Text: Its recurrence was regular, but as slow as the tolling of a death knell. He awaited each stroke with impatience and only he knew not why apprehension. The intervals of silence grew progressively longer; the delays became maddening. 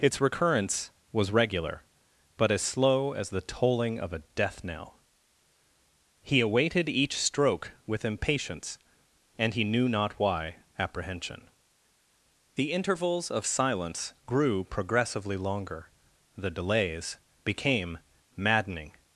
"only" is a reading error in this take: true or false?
true